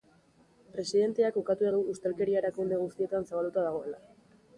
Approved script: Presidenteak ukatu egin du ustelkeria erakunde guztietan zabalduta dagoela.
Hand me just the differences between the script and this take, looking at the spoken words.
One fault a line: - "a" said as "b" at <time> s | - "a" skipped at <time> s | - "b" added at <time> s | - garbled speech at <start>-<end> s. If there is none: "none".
- "egin" skipped at 1.7 s